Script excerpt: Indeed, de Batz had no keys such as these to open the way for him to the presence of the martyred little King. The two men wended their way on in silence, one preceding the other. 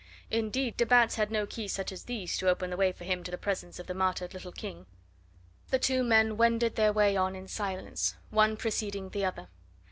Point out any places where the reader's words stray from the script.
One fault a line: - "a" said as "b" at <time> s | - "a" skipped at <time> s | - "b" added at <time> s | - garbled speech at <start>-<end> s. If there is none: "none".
none